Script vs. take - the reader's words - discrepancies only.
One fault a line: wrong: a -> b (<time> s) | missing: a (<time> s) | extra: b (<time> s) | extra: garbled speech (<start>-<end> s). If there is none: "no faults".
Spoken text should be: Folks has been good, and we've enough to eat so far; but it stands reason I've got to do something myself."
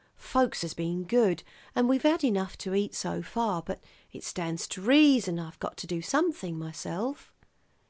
extra: had (2.0 s)
extra: to (4.7 s)